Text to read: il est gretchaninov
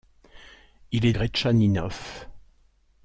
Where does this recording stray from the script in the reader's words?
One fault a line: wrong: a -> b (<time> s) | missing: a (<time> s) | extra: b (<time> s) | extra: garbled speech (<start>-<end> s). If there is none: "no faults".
no faults